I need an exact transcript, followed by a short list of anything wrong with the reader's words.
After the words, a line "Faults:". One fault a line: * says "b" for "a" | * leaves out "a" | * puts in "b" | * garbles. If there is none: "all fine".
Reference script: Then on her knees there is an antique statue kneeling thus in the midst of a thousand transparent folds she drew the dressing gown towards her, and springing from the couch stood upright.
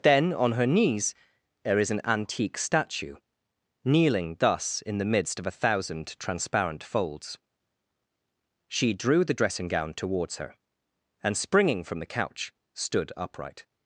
Then on her knees there is an antique statue kneeling thus in the midst of a thousand transparent folds she drew the dressing gown towards her, and springing from the couch stood upright.
Faults:
all fine